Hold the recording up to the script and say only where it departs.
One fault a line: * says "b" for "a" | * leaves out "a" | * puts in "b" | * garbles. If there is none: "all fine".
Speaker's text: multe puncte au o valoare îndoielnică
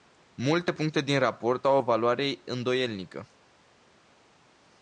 * puts in "din raport"